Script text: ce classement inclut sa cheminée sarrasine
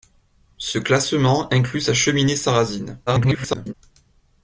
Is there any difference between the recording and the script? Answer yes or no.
yes